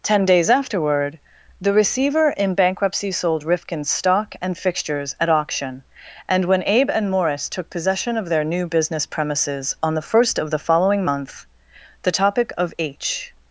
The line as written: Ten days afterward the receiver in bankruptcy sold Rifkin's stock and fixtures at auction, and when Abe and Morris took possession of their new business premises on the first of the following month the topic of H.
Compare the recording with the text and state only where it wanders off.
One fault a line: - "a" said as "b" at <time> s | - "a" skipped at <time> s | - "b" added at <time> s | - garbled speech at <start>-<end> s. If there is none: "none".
none